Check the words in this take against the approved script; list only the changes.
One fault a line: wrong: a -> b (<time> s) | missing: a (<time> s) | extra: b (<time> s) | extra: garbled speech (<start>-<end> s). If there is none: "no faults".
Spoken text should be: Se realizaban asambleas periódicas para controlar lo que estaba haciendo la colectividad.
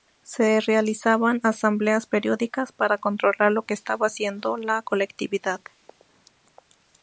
no faults